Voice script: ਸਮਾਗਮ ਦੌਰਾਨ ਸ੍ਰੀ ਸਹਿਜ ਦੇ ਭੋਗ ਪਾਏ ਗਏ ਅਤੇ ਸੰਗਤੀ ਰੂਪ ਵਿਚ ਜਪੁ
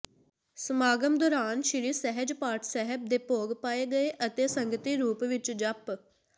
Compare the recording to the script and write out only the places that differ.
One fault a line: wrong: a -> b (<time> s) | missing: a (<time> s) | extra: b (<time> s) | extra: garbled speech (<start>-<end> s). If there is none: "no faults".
extra: ਪਾਠ ਸਾਹਿਬ (2.3 s)